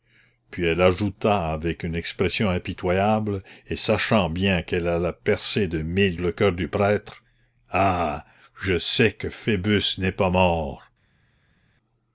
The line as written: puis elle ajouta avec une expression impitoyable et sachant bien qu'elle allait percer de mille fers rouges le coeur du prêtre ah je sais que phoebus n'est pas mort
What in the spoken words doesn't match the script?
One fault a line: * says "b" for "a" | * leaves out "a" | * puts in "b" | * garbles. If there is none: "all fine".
* leaves out "fers rouges"